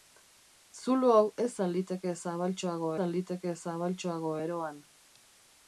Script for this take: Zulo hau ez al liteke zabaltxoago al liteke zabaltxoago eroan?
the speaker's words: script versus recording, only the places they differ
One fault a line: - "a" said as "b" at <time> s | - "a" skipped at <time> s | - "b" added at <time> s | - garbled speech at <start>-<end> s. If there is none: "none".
none